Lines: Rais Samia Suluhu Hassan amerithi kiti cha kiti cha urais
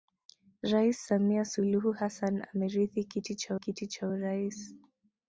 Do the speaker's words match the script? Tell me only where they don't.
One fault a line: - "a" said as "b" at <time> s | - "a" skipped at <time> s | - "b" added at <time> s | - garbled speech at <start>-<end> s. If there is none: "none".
none